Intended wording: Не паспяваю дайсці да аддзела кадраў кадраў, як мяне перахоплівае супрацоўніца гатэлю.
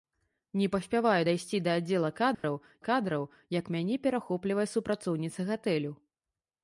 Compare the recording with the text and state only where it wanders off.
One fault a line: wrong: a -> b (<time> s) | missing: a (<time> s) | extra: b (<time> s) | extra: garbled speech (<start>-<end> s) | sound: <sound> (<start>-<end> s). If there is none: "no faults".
sound: dropout (2.3-2.4 s)